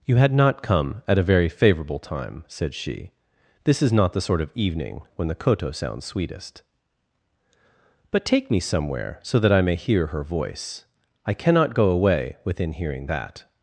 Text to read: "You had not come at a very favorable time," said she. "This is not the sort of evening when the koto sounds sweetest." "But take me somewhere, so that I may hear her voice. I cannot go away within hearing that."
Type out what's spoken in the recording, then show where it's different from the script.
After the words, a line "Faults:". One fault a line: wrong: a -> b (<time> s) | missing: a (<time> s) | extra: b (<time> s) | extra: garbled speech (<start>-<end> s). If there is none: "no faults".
"You had not come at a very favorable time," said she. "This is not the sort of evening when the koto sounds sweetest." "But take me somewhere, so that I may hear her voice. I cannot go away within hearing that."
Faults:
no faults